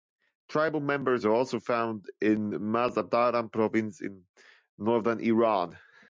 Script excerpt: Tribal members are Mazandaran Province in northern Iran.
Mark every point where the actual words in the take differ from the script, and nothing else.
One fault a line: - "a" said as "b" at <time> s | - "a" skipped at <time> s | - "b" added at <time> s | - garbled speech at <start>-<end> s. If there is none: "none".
- "also found in" added at 1.3 s